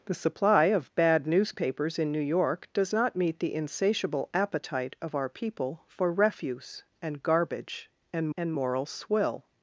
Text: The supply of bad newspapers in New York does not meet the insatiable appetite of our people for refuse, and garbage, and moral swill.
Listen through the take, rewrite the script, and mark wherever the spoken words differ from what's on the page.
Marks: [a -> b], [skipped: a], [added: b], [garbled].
The supply of bad newspapers in New York does not meet the insatiable appetite of our people for refuse, and garbage, and [added: and] moral swill.